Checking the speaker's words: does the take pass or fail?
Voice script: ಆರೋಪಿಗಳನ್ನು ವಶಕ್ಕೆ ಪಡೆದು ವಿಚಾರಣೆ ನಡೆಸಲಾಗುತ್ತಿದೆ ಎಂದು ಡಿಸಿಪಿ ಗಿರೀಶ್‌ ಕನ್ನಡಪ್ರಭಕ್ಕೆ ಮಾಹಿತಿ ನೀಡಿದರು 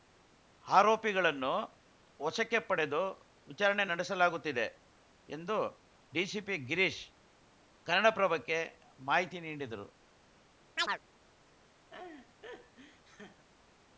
pass